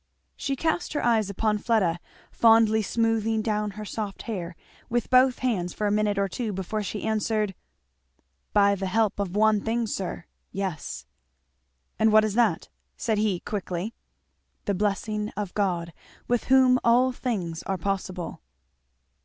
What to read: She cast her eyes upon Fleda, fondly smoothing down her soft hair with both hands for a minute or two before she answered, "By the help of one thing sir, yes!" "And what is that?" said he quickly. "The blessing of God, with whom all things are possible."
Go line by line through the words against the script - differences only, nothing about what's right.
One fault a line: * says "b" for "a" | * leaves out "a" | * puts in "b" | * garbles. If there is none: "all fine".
all fine